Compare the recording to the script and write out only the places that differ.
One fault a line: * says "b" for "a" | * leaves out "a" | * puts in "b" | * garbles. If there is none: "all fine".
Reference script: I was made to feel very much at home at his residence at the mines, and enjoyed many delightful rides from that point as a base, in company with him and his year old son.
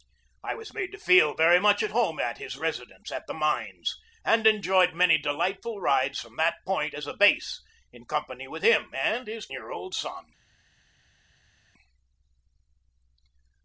all fine